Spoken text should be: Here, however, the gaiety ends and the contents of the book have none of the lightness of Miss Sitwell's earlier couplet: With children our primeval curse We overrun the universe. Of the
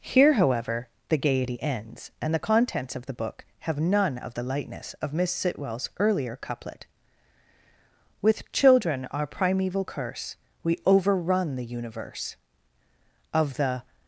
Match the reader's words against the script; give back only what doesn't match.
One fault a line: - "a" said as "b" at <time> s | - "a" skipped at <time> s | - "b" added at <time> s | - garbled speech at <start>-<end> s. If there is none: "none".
none